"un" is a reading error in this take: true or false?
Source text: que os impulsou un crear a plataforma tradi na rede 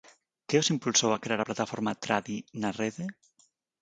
true